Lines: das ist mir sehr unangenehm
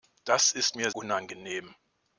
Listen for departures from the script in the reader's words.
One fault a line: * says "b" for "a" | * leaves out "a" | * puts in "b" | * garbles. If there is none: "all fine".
* leaves out "sehr"